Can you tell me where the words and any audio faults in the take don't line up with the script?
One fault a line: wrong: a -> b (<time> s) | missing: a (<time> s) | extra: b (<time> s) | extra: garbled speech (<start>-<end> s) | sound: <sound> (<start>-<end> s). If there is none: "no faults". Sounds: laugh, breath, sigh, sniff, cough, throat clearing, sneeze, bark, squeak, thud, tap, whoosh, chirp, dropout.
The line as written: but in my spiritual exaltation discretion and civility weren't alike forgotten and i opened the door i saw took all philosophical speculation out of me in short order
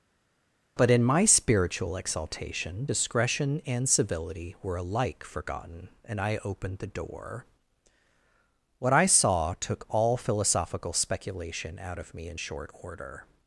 wrong: weren't -> were (4.6 s)
extra: what (8.8 s)